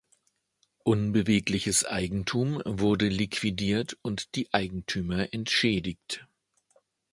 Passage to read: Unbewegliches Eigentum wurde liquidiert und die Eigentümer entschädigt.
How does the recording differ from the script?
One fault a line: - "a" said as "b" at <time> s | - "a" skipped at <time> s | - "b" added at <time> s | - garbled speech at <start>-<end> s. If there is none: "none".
none